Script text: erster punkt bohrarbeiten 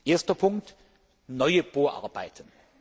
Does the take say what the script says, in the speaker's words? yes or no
no